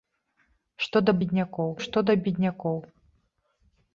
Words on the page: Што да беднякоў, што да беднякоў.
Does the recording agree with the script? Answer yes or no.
yes